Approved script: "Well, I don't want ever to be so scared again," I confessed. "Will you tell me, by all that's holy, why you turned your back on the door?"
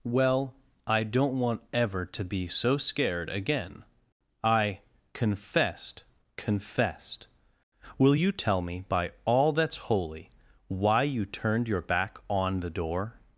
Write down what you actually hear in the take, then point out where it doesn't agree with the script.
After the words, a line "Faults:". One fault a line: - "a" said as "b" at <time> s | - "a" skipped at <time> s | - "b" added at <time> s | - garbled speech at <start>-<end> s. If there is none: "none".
"Well, I don't want ever to be so scared again," I confessed confessed. "Will you tell me, by all that's holy, why you turned your back on the door?"
Faults:
- "confessed" added at 6.4 s